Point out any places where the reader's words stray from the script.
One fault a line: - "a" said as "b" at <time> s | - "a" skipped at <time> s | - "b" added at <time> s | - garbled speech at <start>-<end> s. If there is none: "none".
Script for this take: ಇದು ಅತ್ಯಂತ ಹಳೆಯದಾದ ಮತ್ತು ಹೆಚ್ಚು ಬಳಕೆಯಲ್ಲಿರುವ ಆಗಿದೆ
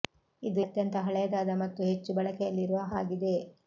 none